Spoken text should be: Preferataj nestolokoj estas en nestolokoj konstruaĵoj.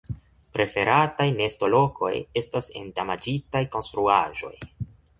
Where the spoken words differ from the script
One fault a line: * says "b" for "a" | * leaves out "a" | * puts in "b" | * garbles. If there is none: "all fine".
* says "damaĝitaj" for "nestolokoj"